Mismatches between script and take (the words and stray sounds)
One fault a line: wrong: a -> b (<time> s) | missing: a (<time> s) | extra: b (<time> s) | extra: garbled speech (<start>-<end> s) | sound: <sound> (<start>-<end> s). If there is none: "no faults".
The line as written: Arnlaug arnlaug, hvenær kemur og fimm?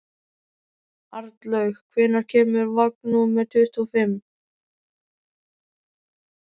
missing: arnlaug (1.8 s)
extra: vagn númer tuttugu (2.8 s)